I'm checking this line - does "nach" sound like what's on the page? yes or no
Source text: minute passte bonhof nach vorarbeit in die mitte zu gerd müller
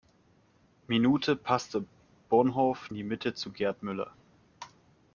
no